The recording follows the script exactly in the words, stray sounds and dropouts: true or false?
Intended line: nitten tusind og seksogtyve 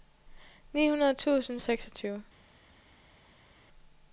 true